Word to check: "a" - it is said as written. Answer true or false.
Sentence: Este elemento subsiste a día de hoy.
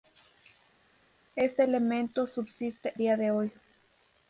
false